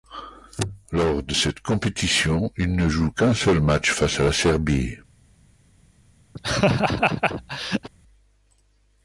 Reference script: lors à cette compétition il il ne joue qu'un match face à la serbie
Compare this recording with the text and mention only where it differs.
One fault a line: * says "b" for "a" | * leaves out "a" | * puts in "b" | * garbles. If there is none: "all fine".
* says "de" for "à"
* leaves out "il"
* puts in "seul"